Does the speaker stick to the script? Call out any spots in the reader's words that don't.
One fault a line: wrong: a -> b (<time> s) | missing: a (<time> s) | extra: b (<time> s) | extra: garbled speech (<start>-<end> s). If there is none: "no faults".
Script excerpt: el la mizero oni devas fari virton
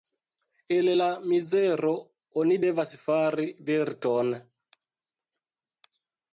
no faults